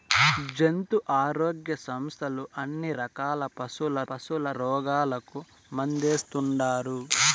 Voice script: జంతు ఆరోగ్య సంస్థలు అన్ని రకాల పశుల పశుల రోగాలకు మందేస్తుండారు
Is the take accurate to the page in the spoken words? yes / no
yes